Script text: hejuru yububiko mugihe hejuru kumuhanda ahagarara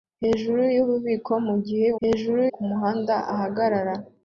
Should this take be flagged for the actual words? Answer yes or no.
no